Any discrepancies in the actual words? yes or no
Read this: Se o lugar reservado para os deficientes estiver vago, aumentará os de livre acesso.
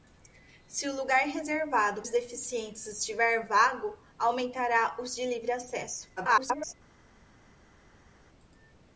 yes